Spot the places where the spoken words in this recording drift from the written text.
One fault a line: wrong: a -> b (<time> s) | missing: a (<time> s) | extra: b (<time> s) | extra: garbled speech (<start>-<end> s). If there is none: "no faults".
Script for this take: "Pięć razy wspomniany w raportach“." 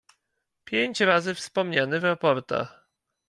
no faults